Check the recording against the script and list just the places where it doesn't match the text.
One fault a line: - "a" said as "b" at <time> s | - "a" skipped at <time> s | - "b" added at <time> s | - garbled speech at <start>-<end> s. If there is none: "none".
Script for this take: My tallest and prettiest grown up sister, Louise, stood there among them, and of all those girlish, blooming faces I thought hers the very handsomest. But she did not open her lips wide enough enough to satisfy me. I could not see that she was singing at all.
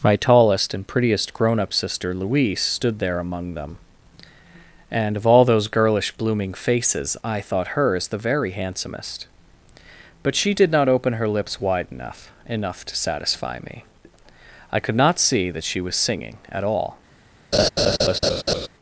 none